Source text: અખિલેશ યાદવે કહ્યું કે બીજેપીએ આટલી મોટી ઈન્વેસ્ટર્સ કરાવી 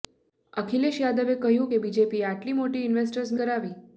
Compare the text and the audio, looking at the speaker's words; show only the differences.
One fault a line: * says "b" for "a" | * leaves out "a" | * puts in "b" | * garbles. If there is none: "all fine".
all fine